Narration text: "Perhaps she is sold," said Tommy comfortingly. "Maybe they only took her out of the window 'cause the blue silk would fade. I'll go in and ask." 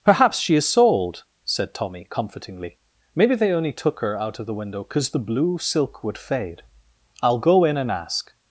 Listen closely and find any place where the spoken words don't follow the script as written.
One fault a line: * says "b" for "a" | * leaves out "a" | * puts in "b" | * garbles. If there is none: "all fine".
all fine